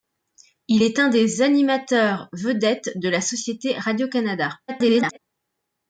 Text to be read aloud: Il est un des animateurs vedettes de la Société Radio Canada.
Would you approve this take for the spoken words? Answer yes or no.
no